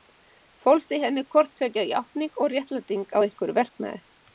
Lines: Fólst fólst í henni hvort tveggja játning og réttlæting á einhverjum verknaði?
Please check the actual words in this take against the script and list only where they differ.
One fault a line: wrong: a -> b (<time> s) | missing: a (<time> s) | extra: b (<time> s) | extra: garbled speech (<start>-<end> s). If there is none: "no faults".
missing: fólst (0.9 s)